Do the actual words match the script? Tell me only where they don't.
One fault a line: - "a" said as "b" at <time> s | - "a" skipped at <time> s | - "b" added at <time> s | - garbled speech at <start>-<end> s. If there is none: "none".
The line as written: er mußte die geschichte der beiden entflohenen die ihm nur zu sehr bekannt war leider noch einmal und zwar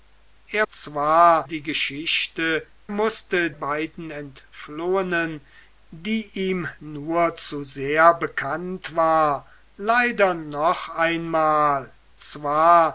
- "mußte" said as "zwar" at 0.7 s
- "der" said as "mußte" at 2.9 s
- "und" skipped at 11.9 s